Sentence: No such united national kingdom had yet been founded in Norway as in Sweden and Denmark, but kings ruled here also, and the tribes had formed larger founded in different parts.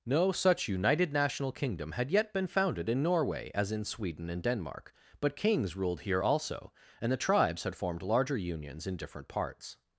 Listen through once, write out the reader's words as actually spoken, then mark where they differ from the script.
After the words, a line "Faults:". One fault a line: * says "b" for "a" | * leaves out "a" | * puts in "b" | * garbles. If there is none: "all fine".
No such united national kingdom had yet been founded in Norway as in Sweden and Denmark, but kings ruled here also, and the tribes had formed larger unions in different parts.
Faults:
* says "unions" for "founded"